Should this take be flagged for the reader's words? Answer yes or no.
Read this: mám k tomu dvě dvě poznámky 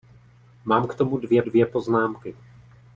no